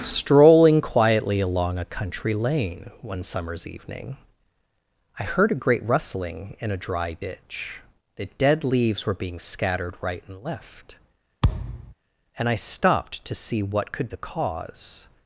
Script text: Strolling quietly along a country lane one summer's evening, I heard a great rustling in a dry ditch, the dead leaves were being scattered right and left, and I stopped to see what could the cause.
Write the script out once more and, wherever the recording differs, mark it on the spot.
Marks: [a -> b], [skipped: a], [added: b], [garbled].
Strolling quietly along a country lane one summer's evening, I heard a great rustling in a dry ditch, the dead leaves were being scattered right and left, and I stopped to see what could the cause.